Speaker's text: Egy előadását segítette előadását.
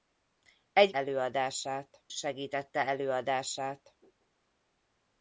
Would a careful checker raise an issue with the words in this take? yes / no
no